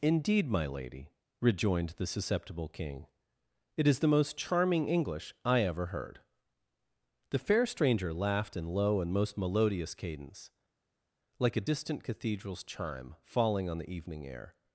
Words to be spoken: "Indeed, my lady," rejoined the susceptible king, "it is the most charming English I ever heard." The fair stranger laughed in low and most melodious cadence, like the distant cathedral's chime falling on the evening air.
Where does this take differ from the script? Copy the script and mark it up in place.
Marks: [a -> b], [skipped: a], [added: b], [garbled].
"Indeed, my lady," rejoined the susceptible king, "it is the most charming English I ever heard." The fair stranger laughed in low and most melodious cadence, like [the -> a] distant cathedral's chime falling on the evening air.